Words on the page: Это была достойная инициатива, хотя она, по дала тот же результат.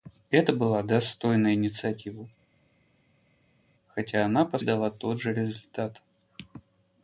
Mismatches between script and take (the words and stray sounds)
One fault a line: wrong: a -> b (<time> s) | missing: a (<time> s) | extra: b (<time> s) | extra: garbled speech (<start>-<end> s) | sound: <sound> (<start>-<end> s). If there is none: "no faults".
no faults